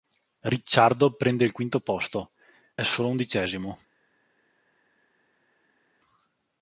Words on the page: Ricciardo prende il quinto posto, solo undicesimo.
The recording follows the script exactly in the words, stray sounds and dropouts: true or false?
true